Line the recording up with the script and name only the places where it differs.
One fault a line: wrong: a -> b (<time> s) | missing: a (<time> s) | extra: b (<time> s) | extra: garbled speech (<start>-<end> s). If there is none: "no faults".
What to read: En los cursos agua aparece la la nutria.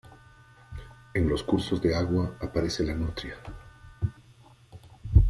extra: de (1.8 s)
missing: la (3.0 s)